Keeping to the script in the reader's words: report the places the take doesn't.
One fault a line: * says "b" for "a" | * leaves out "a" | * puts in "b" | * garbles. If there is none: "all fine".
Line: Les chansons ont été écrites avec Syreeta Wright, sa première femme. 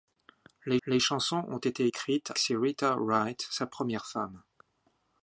* puts in "les"
* leaves out "avec"